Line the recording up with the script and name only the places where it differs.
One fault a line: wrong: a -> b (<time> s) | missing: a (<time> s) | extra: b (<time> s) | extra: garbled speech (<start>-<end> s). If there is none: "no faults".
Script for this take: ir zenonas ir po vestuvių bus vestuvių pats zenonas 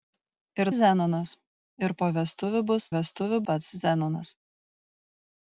no faults